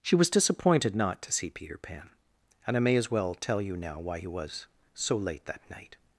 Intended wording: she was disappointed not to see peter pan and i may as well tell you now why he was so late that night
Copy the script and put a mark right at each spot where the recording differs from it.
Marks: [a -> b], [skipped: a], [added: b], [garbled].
she was disappointed not to see peter pan and i may as well tell you now why he was so late that night